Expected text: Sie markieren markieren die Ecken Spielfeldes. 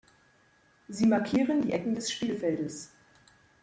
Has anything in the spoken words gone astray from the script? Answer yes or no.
yes